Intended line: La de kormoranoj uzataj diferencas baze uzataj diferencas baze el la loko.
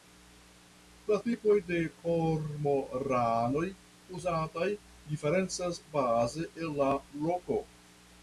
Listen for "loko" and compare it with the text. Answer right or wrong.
right